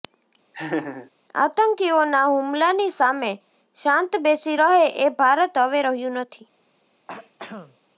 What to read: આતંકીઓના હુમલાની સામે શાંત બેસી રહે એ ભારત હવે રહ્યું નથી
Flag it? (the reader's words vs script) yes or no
no